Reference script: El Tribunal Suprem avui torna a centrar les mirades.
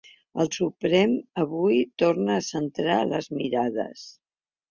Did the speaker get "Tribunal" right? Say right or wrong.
wrong